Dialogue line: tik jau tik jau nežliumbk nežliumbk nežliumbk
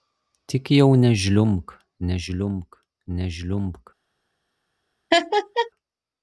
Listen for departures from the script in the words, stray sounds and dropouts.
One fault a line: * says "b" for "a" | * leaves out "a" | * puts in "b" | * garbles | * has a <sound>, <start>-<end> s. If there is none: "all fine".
* leaves out "tik jau"
* has a laugh, 5.1-5.7 s